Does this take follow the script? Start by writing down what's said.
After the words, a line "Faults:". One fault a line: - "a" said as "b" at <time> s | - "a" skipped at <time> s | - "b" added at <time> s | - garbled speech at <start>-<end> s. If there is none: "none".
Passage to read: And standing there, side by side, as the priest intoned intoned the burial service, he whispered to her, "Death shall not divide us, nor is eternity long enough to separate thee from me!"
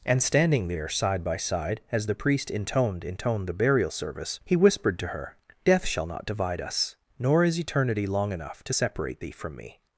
And standing there, side by side, as the priest intoned intoned the burial service, he whispered to her, "Death shall not divide us, nor is eternity long enough to separate thee from me!"
Faults:
none